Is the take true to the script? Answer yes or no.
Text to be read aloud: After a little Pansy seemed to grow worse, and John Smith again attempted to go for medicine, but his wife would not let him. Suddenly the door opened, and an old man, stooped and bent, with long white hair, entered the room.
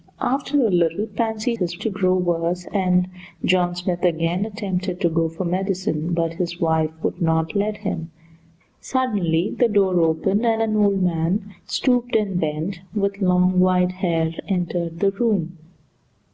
no